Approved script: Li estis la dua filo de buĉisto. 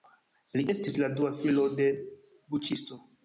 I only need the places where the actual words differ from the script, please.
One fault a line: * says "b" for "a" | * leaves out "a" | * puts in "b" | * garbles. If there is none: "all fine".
all fine